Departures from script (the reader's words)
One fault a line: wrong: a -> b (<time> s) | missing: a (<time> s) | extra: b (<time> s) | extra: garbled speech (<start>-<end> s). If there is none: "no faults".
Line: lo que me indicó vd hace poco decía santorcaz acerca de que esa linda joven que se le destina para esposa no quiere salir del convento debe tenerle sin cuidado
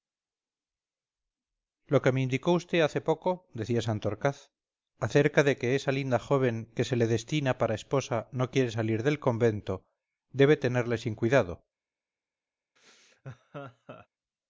no faults